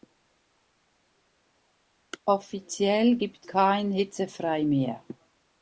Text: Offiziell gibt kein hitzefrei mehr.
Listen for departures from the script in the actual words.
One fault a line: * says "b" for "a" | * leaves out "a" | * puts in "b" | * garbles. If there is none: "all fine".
all fine